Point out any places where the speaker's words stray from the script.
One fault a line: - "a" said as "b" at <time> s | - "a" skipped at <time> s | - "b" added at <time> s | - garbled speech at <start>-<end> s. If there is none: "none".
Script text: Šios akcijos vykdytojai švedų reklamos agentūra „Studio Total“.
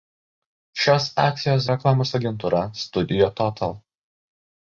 - "vykdytojai švedų" skipped at 1.7 s